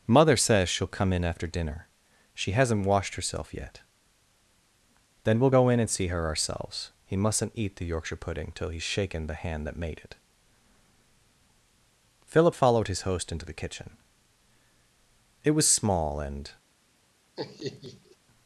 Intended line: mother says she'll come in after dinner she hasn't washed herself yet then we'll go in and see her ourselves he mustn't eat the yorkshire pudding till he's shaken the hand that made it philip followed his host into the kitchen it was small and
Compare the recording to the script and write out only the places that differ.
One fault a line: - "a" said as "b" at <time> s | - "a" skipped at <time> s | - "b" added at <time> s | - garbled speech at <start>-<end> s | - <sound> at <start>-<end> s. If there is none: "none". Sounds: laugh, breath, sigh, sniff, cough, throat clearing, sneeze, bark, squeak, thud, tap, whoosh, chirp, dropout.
- laugh at 17.4-18.2 s